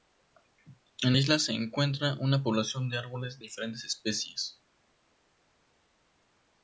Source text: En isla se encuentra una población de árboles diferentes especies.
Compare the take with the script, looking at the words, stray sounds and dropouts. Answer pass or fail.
pass